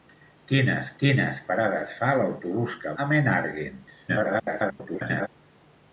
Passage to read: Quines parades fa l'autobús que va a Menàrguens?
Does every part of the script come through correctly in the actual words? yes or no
no